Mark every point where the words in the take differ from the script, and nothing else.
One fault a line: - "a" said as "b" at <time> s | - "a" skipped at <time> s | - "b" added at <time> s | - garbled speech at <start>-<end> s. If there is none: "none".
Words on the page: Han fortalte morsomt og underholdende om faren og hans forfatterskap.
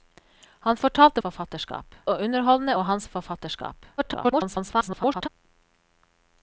- "morsomt" said as "forfatterskap" at 1.3 s
- "om faren" skipped at 2.8 s
- garbled speech at 4.0-5.3 s